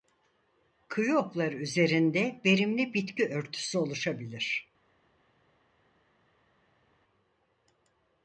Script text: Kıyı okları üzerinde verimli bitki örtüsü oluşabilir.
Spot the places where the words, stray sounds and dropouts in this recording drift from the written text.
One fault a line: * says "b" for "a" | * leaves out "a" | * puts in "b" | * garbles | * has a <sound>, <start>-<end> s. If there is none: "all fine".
all fine